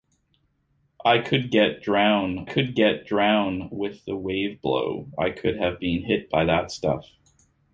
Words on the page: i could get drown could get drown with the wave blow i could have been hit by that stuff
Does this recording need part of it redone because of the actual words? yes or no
no